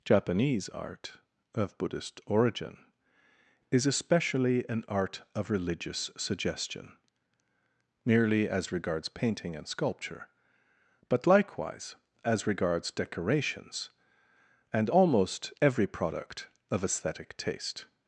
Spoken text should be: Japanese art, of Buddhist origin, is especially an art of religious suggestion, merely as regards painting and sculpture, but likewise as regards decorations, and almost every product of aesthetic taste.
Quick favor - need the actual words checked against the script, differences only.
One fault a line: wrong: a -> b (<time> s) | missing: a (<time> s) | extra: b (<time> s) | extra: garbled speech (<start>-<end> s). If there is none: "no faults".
no faults